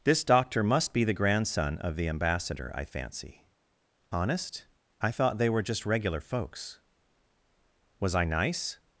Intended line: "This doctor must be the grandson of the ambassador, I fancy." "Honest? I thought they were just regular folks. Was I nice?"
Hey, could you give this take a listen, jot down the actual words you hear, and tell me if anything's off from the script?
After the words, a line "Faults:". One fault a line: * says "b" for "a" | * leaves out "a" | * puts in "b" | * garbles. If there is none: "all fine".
"This doctor must be the grandson of the ambassador, I fancy." "Honest? I thought they were just regular folks. Was I nice?"
Faults:
all fine